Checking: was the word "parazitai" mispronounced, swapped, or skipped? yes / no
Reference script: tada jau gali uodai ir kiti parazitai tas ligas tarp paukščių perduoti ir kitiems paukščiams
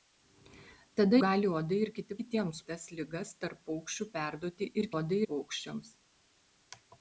yes